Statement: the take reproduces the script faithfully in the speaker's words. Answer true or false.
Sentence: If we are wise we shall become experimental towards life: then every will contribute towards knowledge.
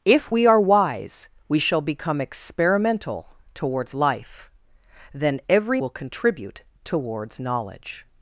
true